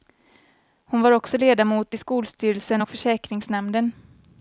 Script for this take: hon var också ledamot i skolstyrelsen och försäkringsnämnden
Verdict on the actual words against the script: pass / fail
pass